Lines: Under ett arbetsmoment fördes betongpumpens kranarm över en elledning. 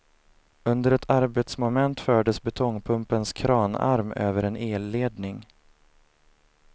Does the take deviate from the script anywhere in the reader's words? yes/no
no